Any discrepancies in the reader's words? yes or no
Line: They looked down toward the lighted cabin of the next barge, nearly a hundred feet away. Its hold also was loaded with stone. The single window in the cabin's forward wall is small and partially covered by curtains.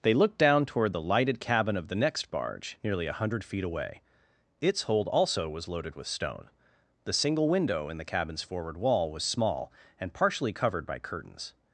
yes